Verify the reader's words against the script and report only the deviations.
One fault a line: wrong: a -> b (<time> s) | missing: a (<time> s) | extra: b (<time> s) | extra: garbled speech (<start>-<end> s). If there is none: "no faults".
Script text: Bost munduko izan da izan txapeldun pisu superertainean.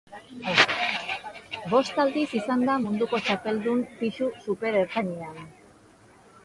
wrong: munduko -> aldiz (2.0 s)
wrong: izan -> munduko (2.9 s)